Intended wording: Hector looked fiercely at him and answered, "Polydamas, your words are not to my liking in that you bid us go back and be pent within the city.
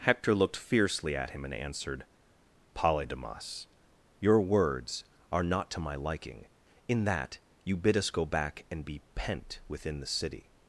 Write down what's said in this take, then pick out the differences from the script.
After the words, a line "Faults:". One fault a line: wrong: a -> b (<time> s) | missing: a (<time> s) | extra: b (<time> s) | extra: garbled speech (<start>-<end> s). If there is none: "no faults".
Hector looked fiercely at him and answered, "Polydamas, your words are not to my liking in that you bid us go back and be pent within the city.
Faults:
no faults